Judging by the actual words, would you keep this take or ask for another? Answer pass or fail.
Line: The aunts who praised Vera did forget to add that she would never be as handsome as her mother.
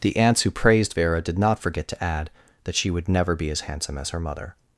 fail